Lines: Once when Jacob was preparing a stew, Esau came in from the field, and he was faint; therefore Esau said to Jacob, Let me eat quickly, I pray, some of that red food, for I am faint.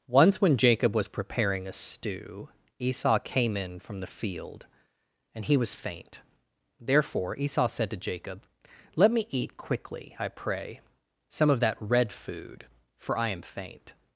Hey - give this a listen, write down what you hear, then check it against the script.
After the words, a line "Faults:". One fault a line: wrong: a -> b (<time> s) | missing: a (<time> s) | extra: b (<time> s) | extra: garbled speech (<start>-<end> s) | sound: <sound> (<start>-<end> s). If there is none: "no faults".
Once when Jacob was preparing a stew, Esau came in from the field, and he was faint; therefore Esau said to Jacob, Let me eat quickly, I pray, some of that red food, for I am faint.
Faults:
no faults